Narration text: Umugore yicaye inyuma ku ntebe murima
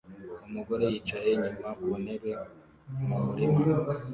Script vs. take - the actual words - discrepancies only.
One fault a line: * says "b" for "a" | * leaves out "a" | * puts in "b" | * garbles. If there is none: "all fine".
* puts in "mu"